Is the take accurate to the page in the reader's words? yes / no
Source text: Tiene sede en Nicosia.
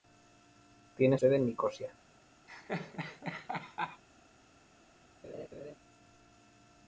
yes